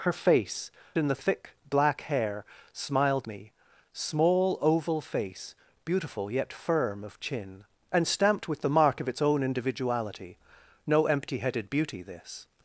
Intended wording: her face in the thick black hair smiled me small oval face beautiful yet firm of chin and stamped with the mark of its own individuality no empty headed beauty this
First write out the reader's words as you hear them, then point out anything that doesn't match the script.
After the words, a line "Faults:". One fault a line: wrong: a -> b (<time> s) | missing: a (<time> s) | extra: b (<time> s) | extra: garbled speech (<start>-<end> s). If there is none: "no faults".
her face in the thick black hair smiled me small oval face beautiful yet firm of chin and stamped with the mark of its own individuality no empty headed beauty this
Faults:
no faults